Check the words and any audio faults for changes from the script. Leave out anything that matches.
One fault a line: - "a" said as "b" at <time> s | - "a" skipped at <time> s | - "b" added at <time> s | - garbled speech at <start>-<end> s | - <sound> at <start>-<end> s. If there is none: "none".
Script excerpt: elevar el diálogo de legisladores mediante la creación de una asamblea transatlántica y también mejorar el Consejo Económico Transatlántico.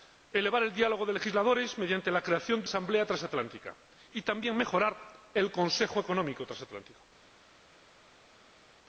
- "una" skipped at 2.7 s